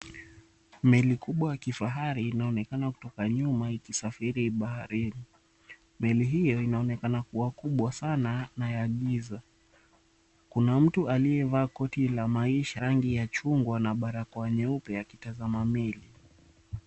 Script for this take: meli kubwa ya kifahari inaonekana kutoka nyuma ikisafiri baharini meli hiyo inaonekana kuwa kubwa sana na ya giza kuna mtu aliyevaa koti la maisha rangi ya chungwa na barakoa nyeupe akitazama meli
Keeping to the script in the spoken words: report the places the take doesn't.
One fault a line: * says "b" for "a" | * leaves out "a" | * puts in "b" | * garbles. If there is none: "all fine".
all fine